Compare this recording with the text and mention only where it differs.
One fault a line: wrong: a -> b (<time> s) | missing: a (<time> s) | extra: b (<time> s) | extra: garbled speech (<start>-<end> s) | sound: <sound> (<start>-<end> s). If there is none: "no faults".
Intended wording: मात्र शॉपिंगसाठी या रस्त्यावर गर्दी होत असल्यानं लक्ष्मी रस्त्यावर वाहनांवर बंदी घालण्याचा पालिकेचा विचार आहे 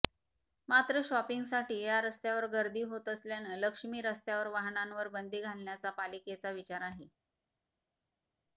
no faults